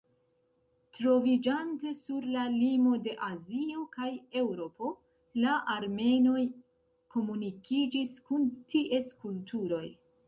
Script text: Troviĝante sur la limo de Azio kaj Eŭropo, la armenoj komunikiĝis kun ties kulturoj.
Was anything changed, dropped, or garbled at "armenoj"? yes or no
no